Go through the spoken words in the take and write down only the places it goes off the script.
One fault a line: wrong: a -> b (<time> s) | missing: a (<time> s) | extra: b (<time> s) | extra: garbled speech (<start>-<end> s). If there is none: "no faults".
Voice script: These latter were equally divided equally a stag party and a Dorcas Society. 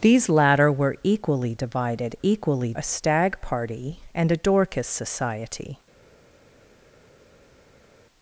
no faults